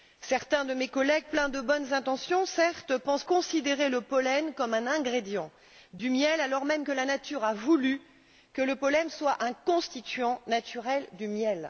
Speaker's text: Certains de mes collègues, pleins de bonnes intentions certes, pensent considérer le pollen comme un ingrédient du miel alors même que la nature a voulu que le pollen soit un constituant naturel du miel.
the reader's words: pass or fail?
pass